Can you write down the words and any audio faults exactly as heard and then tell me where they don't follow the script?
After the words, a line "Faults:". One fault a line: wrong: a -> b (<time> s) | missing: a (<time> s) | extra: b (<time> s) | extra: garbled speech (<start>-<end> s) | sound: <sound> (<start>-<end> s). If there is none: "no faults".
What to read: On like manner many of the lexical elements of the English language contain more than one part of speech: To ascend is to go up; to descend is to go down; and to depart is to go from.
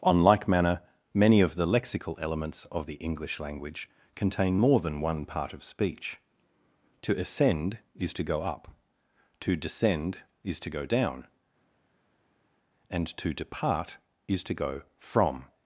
On like manner many of the lexical elements of the English language contain more than one part of speech: To ascend is to go up; to descend is to go down; and to depart is to go from.
Faults:
no faults